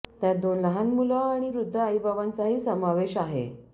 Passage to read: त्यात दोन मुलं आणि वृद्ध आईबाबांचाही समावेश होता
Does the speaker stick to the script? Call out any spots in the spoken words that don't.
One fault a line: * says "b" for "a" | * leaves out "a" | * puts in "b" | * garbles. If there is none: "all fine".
* puts in "लहान"
* says "आहे" for "होता"